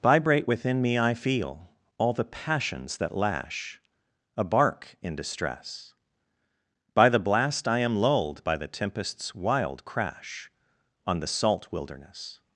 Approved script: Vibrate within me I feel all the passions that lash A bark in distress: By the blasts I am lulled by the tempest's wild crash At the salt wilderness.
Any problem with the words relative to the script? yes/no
yes